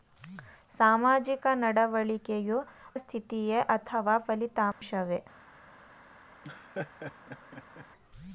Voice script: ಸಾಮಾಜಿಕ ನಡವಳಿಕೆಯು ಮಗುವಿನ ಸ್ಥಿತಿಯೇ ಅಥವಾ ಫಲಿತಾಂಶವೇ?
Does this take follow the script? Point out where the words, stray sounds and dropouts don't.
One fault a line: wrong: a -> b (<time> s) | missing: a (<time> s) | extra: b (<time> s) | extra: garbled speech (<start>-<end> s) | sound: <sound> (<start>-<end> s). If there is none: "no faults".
missing: ಮಗುವಿನ (2.6 s)
sound: dropout (4.7-4.8 s)
sound: laugh (6.4-7.9 s)